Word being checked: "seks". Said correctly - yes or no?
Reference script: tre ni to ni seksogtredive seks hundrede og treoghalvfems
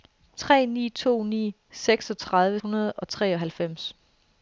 no